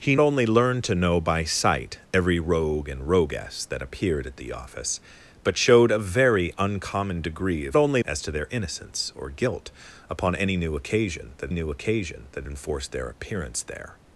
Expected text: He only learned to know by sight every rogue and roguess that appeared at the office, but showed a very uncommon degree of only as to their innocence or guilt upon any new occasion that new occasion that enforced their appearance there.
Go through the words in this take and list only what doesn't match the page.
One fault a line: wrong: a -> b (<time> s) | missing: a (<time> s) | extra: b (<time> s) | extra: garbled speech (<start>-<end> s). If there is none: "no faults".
no faults